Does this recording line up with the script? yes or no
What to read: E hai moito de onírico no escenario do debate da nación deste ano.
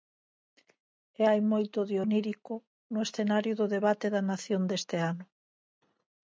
yes